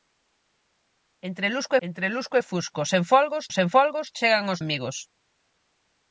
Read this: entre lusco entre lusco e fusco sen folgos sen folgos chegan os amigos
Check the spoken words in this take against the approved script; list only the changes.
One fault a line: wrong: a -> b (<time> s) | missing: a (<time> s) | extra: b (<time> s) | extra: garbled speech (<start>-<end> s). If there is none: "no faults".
no faults